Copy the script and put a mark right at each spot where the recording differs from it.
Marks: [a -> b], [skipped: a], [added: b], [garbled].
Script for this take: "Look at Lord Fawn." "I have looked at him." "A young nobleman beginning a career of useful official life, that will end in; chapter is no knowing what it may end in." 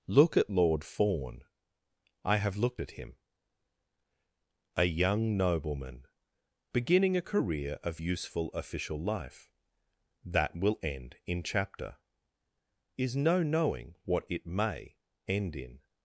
"Look at Lord Fawn." "I have looked at him." "A young nobleman beginning a career of useful official life, that will end in; chapter is no knowing what it may end in."